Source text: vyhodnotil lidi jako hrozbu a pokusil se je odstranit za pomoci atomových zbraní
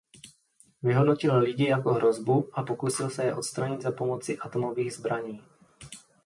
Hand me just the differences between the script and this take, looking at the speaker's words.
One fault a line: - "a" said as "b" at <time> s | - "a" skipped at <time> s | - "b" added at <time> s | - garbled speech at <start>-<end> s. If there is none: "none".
none